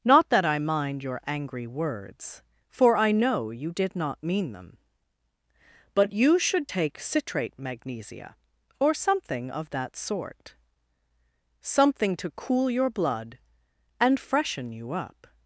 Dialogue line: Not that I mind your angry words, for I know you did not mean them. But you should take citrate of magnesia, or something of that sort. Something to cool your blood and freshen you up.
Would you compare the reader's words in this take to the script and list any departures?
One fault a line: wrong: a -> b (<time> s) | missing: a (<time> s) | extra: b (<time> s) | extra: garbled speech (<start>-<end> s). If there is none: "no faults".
missing: of (7.6 s)